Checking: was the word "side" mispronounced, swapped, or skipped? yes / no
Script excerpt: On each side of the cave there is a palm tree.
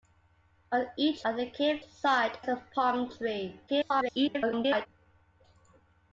yes